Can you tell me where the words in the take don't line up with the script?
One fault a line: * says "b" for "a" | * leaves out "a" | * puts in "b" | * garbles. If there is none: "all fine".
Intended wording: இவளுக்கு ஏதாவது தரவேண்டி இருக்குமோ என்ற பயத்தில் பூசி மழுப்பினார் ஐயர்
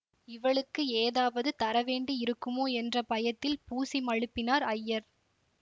all fine